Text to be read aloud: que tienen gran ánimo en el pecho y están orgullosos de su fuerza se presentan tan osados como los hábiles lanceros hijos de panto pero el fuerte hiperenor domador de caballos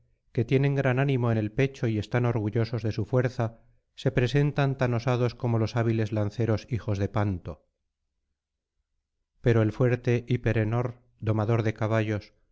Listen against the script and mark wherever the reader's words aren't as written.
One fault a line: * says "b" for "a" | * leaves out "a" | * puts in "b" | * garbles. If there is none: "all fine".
all fine